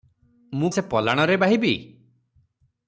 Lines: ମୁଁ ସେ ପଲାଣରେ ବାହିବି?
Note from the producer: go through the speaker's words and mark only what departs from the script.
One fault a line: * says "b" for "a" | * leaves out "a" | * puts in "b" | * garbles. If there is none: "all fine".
all fine